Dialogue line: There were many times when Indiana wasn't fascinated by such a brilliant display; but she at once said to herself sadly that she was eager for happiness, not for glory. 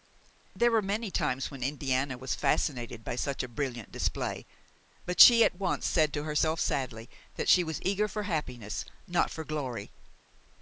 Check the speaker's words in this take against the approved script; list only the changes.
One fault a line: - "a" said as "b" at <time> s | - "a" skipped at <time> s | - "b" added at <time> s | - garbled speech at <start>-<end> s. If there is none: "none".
- "wasn't" said as "was" at 2.2 s